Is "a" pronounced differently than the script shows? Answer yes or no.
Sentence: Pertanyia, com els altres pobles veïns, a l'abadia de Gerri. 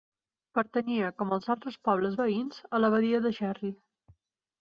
no